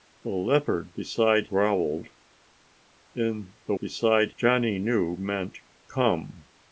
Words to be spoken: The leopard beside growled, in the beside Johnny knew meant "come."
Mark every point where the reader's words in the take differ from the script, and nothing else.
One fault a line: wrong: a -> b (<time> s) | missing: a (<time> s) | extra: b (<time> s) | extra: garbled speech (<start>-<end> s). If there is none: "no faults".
no faults